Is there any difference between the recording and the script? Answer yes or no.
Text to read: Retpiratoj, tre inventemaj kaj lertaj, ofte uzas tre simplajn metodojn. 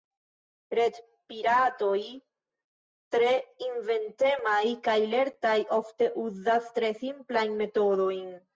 no